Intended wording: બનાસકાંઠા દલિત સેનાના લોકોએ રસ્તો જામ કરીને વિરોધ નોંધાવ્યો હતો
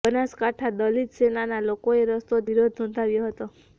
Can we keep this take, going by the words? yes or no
no